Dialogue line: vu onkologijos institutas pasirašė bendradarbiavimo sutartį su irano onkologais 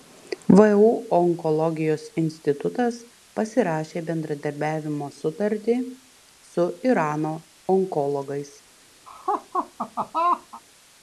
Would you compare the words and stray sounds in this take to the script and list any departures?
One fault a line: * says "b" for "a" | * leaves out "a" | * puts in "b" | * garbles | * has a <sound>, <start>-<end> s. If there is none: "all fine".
* has a laugh, 9.1-10.6 s